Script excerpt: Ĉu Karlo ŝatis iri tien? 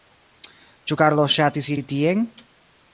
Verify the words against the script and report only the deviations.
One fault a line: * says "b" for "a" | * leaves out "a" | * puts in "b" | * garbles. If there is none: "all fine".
all fine